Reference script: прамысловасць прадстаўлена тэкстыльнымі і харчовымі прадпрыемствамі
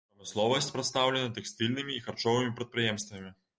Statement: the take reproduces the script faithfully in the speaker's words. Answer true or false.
true